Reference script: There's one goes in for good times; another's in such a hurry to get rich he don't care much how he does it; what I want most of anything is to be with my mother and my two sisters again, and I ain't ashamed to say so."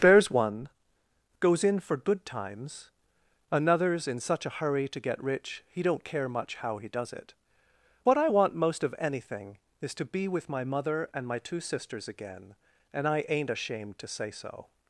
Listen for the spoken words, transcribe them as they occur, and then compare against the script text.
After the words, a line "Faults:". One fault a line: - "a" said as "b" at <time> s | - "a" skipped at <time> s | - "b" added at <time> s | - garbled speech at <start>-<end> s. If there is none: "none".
There's one goes in for good times; another's in such a hurry to get rich he don't care much how he does it; what I want most of anything is to be with my mother and my two sisters again, and I ain't ashamed to say so."
Faults:
none